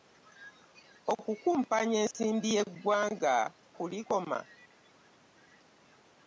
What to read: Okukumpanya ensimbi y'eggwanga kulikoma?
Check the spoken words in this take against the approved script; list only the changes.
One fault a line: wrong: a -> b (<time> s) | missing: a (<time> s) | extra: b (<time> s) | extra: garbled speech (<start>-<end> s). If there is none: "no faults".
no faults